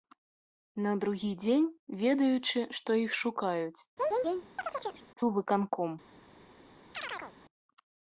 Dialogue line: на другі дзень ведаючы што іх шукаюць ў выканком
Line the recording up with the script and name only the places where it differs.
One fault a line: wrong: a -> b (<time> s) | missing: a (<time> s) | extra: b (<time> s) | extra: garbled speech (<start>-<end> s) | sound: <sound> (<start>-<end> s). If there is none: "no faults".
sound: chirp (4.0-5.1 s)
sound: chirp (6.9-7.3 s)